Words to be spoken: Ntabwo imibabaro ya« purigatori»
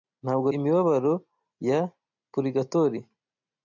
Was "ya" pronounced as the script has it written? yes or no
yes